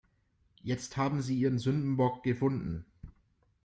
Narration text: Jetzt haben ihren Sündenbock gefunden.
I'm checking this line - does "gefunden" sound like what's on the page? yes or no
yes